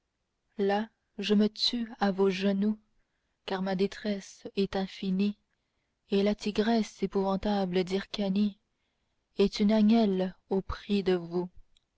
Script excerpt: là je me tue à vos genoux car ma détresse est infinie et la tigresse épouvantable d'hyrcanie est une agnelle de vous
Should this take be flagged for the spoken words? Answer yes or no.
yes